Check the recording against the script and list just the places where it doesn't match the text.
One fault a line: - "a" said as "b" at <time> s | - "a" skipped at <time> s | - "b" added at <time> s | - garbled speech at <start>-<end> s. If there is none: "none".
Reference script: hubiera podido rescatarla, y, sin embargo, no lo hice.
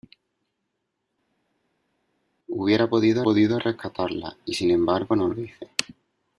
- "podido" added at 3.2 s